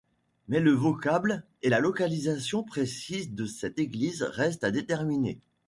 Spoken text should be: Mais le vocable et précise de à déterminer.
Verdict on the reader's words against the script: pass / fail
fail